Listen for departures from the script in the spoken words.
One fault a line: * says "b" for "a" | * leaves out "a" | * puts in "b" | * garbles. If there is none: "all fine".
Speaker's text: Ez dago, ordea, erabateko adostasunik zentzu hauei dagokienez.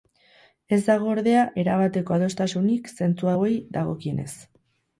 all fine